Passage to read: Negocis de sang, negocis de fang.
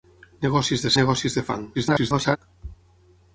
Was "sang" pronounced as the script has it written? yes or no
no